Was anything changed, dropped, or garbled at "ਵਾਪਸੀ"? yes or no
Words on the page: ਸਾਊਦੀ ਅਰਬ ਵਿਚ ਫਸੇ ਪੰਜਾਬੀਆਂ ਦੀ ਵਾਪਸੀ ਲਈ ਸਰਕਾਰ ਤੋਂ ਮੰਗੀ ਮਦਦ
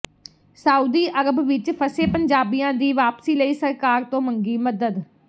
no